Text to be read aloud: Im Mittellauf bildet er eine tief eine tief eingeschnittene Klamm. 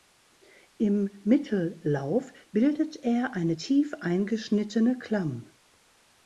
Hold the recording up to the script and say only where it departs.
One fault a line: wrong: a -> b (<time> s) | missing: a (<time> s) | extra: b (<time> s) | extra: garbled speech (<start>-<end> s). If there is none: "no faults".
missing: eine tief (3.9 s)